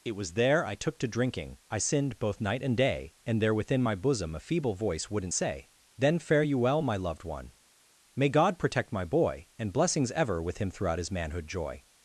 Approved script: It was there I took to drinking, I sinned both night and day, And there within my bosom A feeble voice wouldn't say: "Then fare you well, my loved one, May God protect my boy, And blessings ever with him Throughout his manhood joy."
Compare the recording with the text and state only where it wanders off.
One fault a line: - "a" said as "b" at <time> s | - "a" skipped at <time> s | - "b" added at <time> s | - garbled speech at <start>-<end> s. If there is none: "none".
none